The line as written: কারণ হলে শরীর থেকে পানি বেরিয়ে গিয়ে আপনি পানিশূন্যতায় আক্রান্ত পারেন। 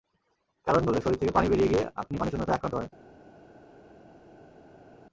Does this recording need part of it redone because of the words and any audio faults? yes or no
no